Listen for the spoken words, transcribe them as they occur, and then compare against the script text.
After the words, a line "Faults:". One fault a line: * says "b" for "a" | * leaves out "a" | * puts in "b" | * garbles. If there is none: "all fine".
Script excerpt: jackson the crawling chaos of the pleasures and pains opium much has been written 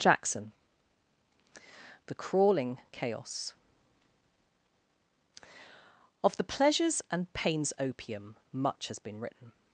jackson the crawling chaos of the pleasures and pains opium much has been written
Faults:
all fine